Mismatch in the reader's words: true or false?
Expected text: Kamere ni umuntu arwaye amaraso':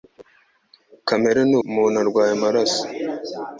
false